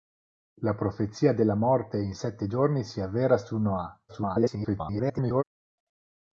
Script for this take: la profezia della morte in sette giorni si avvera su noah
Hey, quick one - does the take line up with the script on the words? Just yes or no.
no